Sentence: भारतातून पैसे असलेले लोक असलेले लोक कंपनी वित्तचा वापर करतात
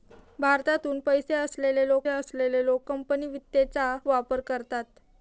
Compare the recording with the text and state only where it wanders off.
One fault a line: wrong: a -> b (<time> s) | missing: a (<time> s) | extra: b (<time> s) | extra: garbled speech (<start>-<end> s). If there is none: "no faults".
no faults